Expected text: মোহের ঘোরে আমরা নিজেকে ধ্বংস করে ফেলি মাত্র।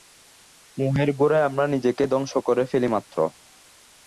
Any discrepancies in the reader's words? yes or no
no